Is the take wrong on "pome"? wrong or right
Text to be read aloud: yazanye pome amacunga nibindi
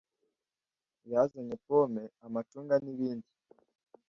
right